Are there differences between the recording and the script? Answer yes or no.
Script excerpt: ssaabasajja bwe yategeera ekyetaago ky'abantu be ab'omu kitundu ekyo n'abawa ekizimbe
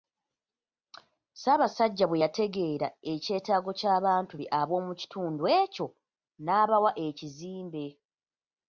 no